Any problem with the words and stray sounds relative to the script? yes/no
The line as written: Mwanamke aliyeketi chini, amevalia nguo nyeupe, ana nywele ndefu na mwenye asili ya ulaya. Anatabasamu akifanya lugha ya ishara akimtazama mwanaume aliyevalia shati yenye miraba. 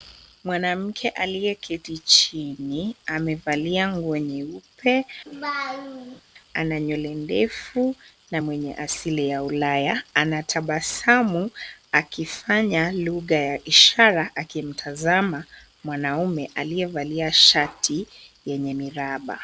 yes